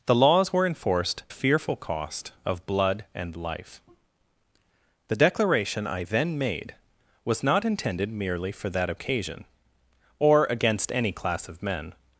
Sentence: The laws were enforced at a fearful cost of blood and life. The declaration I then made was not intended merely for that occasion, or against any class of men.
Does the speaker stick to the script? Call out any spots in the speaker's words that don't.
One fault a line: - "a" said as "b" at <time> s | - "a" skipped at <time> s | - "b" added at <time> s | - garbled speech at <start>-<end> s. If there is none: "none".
- "at" skipped at 1.2 s